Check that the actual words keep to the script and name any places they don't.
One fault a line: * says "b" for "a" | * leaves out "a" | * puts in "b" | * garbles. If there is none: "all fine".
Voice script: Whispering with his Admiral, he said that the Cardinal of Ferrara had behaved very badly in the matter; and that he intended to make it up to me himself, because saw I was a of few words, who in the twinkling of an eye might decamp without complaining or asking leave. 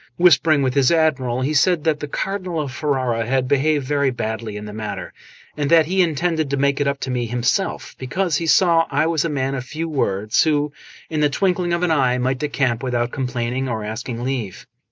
* puts in "he"
* puts in "man"